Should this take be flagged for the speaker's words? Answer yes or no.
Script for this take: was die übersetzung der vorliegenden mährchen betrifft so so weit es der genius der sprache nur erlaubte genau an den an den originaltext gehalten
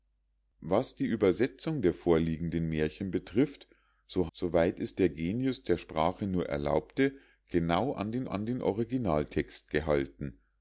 no